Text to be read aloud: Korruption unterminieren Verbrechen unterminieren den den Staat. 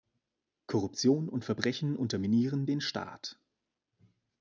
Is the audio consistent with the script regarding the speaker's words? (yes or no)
no